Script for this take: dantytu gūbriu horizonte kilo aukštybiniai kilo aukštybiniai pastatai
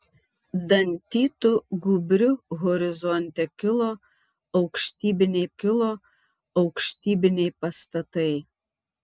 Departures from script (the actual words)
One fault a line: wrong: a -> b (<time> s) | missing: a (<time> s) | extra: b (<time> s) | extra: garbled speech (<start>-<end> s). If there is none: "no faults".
no faults